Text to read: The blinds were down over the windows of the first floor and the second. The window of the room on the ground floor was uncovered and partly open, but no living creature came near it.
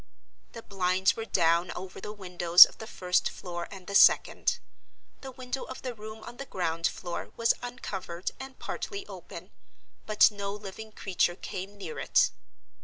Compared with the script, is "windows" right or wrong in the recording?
right